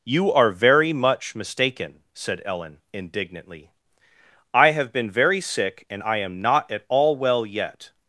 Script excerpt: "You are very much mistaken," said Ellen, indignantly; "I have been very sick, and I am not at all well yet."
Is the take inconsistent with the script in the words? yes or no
no